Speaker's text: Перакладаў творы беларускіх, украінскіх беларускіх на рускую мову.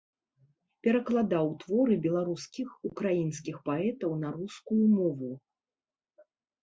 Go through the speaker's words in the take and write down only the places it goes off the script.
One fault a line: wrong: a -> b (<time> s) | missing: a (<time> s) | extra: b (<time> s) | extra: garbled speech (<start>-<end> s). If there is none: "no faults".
wrong: беларускіх -> паэтаў (3.7 s)